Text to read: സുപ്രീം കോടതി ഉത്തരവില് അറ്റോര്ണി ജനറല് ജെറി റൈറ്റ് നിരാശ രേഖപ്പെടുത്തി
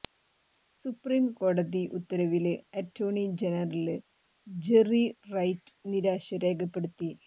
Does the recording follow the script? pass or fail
pass